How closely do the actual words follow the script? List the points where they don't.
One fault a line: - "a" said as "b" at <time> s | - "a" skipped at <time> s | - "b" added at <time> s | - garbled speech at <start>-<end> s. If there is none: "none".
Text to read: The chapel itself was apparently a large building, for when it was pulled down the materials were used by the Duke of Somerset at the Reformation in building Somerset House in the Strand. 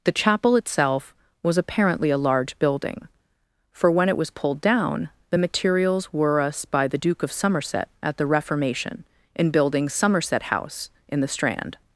- "used" said as "us" at 6.4 s